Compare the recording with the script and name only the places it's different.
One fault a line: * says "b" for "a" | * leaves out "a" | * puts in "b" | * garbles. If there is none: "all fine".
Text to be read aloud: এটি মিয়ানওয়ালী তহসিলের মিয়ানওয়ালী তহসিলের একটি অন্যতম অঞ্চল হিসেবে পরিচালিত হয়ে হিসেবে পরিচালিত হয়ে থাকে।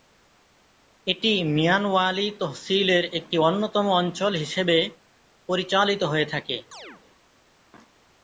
* leaves out "মিয়ানওয়ালী তহসিলের"
* leaves out "হিসেবে পরিচালিত হয়ে"